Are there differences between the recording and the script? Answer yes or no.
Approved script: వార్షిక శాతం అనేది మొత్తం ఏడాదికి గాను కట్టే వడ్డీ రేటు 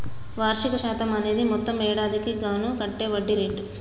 no